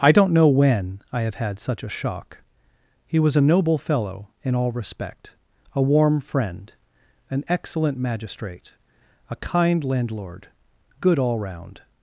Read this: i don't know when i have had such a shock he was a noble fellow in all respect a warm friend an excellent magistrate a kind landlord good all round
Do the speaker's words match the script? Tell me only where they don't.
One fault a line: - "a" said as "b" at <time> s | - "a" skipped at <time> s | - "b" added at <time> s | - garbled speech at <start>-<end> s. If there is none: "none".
none